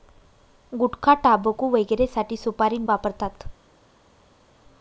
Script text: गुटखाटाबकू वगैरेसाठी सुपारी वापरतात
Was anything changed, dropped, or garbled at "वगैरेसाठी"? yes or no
no